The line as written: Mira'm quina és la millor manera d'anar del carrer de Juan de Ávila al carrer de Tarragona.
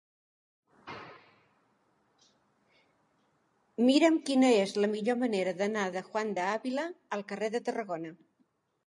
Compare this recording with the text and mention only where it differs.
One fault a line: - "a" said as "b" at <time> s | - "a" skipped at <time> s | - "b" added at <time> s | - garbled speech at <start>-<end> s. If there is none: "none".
- "del carrer" skipped at 5.8 s